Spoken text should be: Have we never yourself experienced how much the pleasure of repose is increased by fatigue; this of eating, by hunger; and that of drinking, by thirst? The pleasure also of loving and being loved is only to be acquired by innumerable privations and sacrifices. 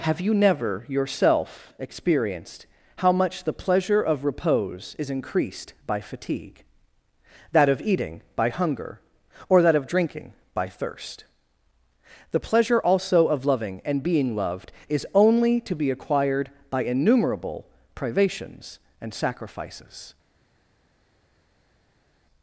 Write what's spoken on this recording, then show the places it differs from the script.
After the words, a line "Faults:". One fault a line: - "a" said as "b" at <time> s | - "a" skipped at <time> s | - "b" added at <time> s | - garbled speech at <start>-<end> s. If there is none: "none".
Have you never yourself experienced how much the pleasure of repose is increased by fatigue; that of eating, by hunger; or that of drinking, by thirst? The pleasure also of loving and being loved is only to be acquired by innumerable privations and sacrifices.
Faults:
- "we" said as "you" at 0.2 s
- "this" said as "that" at 7.5 s
- "and" said as "or" at 9.5 s